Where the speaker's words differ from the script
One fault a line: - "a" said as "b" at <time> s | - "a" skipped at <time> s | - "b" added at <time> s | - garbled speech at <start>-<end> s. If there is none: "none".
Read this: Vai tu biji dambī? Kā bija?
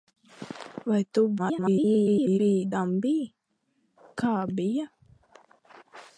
- garbled speech at 1.4-2.4 s